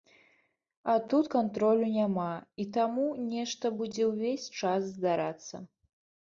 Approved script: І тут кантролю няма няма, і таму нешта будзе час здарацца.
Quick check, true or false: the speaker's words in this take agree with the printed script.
false